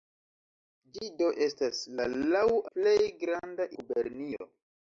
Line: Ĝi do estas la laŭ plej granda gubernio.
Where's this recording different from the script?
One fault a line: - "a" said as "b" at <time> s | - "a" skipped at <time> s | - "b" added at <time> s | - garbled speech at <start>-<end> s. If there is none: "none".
none